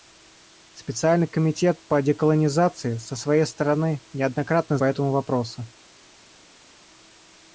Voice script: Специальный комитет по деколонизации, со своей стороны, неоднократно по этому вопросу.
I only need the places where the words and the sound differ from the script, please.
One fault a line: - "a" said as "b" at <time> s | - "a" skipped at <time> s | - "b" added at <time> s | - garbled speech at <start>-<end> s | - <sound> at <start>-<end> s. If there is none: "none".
none